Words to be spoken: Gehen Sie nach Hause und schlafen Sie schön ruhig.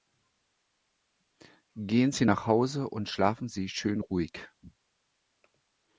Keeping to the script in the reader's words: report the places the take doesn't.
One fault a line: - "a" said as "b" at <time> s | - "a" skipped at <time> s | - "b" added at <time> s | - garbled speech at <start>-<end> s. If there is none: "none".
none